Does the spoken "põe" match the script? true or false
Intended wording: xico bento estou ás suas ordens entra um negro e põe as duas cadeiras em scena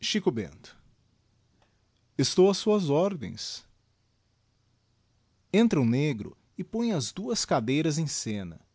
true